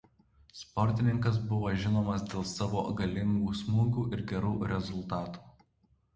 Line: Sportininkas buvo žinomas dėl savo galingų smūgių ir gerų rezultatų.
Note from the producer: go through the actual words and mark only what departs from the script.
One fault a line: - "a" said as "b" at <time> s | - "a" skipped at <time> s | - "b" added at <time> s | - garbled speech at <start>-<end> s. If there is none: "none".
none